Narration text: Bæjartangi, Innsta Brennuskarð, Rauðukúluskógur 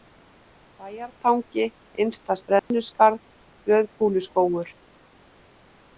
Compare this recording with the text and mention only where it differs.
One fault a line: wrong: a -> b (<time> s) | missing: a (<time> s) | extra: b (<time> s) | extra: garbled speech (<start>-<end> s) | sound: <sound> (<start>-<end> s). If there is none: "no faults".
sound: dropout (2.6-2.7 s)